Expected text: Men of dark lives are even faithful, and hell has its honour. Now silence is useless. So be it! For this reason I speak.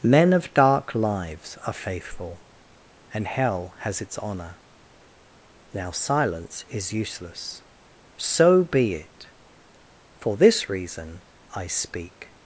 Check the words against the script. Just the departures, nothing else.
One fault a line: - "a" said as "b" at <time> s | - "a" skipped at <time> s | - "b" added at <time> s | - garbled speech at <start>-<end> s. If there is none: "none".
- "even" skipped at 1.7 s